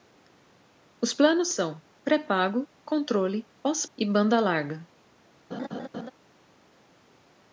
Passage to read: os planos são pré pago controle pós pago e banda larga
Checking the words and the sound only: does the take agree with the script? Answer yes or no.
no